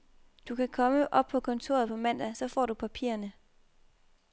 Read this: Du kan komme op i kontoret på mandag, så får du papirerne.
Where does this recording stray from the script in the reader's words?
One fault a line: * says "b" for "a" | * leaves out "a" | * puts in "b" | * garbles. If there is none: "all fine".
* says "på" for "i"